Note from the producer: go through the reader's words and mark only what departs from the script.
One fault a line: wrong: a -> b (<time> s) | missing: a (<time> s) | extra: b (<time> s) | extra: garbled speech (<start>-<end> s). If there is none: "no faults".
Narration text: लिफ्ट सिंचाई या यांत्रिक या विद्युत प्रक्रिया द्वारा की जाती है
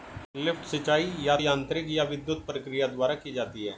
no faults